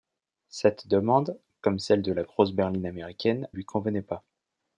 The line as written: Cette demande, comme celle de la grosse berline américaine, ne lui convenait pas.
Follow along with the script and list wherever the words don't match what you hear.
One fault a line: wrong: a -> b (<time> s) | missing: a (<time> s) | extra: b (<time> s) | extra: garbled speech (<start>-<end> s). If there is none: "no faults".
missing: ne (3.5 s)